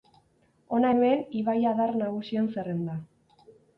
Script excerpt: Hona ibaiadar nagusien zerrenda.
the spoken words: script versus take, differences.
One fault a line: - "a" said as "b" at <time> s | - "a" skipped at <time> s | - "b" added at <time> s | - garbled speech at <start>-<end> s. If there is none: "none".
- "hemen" added at 0.9 s